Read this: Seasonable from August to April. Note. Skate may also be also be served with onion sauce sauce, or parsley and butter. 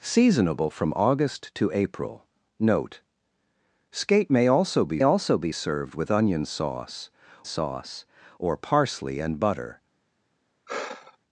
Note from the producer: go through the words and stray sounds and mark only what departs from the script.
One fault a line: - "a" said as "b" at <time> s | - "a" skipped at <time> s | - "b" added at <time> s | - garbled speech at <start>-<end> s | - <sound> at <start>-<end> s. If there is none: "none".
- sigh at 10.7-11.2 s